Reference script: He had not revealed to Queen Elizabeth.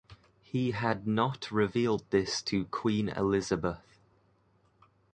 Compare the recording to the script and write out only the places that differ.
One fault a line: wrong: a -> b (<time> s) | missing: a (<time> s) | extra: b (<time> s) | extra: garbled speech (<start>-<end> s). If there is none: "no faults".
extra: this (2.1 s)